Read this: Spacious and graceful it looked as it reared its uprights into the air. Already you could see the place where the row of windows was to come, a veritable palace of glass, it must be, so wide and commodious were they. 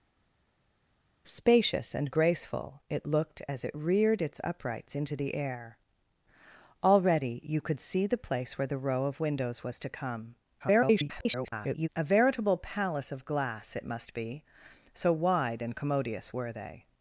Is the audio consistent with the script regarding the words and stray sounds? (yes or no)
no